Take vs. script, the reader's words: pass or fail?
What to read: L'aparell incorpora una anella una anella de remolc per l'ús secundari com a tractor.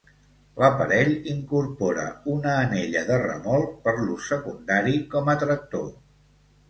fail